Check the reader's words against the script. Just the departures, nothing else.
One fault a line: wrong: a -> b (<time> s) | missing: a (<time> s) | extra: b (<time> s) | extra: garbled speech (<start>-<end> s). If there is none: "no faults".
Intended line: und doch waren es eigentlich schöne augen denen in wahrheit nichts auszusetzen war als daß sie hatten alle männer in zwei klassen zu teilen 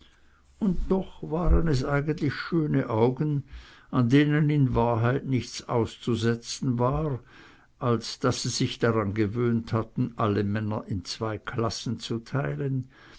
extra: an (3.9 s)
extra: sich daran gewöhnt (8.5 s)